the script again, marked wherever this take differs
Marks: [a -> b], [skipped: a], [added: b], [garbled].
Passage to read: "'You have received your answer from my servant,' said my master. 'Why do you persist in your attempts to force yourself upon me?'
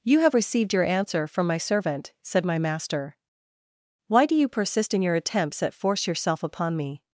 "'You have received your answer from my servant,' said my master. 'Why do you persist in your attempts [to -> at] force yourself upon me?'